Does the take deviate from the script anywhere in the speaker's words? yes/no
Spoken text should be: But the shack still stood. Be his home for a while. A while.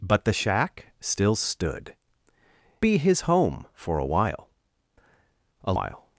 no